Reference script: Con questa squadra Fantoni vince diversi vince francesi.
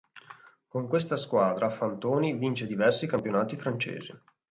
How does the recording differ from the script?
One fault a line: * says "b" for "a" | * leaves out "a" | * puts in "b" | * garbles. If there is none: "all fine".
* says "campionati" for "vince"